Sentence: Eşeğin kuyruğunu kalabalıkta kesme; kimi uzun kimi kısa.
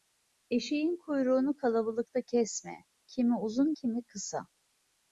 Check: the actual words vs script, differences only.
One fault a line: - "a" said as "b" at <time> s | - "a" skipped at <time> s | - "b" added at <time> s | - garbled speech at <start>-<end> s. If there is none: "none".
none